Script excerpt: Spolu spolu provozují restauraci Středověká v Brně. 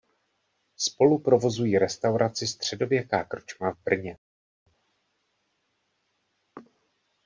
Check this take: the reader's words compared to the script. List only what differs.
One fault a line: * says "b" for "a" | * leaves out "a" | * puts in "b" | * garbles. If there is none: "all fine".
* leaves out "spolu"
* puts in "krčma"